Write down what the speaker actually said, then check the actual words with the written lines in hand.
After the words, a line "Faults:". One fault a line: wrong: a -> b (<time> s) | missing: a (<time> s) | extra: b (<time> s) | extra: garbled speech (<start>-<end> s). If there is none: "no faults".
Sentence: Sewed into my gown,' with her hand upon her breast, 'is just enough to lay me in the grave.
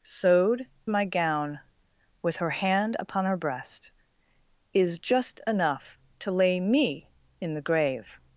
Sewed my gown,' with her hand upon her breast, 'is just enough to lay me in the grave.
Faults:
missing: into (0.7 s)